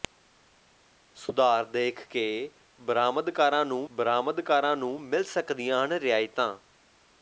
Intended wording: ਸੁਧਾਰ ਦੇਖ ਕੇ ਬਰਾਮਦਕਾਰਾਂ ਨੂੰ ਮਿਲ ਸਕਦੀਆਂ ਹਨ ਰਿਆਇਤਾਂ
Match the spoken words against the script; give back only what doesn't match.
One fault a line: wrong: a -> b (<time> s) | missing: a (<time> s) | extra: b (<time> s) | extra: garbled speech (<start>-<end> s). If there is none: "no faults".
extra: ਬਰਾਮਦਕਾਰਾਂ ਨੂੰ (3.9 s)